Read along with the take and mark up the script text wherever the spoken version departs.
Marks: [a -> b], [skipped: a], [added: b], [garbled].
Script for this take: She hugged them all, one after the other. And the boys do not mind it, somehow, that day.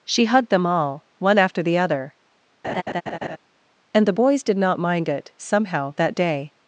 She hugged them all, one after the other. And the boys [do -> did] not mind it, somehow, that day.